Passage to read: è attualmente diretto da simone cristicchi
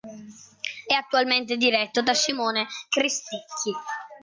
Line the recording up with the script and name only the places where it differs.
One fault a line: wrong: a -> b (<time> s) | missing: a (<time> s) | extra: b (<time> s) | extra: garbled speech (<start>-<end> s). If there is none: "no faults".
no faults